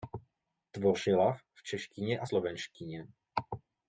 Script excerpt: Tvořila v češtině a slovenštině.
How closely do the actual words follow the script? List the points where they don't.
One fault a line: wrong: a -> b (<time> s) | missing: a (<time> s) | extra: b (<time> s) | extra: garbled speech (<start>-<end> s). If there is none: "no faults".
no faults